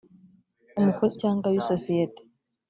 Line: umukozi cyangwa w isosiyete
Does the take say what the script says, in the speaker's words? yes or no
yes